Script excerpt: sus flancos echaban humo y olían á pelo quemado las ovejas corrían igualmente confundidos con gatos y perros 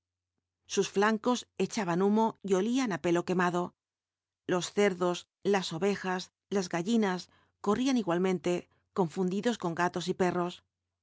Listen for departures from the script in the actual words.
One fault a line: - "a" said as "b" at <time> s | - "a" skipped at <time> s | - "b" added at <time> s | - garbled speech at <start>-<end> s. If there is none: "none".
- "los cerdos" added at 4.5 s
- "las gallinas" added at 6.5 s